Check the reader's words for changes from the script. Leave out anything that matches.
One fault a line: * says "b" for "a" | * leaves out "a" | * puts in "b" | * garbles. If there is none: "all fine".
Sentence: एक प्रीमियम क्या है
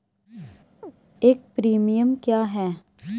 all fine